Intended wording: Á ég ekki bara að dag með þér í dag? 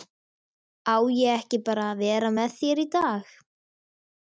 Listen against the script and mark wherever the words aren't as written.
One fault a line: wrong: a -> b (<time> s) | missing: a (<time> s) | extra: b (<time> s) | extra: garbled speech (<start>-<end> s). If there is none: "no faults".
wrong: dag -> vera (2.1 s)